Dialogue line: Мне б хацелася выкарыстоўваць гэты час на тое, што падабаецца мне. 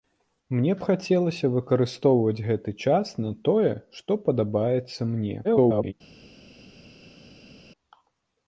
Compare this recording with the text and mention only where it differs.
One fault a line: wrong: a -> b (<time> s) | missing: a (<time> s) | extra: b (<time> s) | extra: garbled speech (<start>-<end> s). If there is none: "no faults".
extra: garbled speech (5.4-5.9 s)